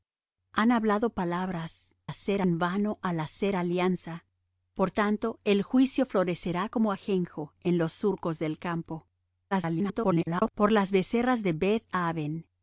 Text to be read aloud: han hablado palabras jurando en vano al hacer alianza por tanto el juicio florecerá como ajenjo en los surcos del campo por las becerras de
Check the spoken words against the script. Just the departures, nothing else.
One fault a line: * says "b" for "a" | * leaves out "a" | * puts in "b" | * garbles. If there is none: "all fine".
* says "hacer" for "jurando"
* garbles